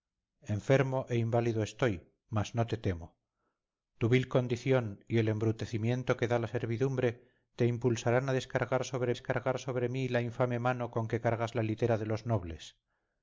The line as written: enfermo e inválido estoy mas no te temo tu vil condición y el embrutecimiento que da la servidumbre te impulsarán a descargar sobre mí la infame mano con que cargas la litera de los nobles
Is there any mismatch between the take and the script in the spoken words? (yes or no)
yes